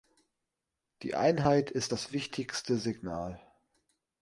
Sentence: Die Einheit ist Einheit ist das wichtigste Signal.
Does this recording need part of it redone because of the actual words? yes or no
yes